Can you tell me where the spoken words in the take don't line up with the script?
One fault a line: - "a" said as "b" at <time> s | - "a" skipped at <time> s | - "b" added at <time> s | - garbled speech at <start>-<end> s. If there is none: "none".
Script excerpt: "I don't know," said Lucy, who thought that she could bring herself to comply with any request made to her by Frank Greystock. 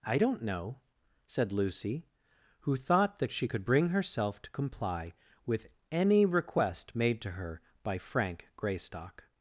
none